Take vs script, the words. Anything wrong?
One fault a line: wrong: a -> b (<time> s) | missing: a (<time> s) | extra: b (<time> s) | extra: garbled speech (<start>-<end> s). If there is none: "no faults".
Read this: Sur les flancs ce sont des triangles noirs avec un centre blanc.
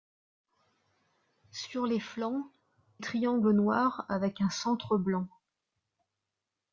missing: ce sont des (2.5 s)